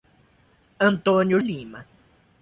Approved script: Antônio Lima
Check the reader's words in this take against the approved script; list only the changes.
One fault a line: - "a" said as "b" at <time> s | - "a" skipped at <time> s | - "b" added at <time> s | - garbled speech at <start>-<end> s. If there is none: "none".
none